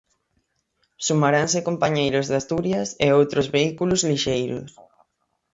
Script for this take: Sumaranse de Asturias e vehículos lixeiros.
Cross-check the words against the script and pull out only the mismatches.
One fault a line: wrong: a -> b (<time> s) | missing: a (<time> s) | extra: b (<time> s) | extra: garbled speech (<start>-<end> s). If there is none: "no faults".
extra: compañeiros (1.7 s)
extra: outros (3.2 s)